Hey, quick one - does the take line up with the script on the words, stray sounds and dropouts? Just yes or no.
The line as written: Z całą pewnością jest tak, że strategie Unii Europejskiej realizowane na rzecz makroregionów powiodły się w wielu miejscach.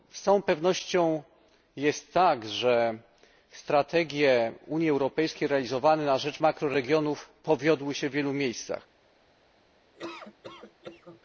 no